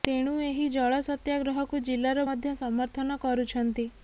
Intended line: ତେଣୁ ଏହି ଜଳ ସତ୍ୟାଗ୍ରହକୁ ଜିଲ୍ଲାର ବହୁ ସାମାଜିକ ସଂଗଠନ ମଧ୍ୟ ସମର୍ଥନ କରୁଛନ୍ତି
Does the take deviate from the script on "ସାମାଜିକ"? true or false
true